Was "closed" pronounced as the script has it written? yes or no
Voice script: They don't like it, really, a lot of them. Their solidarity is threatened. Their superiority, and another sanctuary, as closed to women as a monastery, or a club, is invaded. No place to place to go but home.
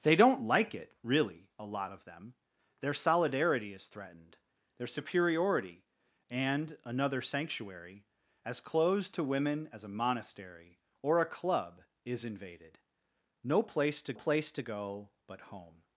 yes